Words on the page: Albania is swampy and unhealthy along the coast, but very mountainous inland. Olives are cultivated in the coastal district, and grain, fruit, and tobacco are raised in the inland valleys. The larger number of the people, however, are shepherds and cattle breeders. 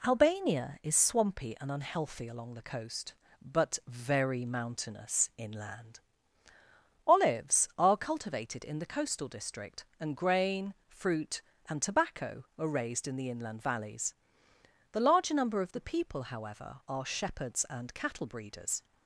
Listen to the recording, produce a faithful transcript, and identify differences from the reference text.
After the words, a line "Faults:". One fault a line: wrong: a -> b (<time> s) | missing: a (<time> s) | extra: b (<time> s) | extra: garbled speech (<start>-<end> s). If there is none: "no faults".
Albania is swampy and unhealthy along the coast, but very mountainous inland. Olives are cultivated in the coastal district, and grain, fruit, and tobacco are raised in the inland valleys. The larger number of the people, however, are shepherds and cattle breeders.
Faults:
no faults